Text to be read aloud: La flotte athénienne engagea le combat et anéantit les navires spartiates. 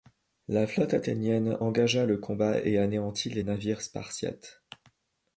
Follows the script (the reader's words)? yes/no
yes